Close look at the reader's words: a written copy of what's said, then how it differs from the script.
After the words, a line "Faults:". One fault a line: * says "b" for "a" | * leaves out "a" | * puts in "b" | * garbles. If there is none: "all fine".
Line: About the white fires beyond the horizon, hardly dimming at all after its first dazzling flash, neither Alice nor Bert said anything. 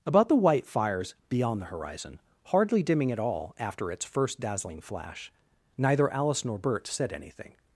About the white fires beyond the horizon, hardly dimming at all after its first dazzling flash, neither Alice nor Bert said anything.
Faults:
all fine